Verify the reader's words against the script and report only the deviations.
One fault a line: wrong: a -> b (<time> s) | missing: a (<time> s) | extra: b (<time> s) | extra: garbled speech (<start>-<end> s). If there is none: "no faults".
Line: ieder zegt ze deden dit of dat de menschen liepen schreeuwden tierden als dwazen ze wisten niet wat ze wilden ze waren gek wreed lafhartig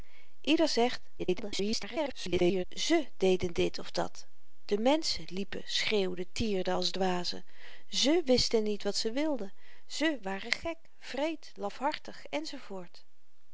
extra: garbled speech (1.2-2.6 s)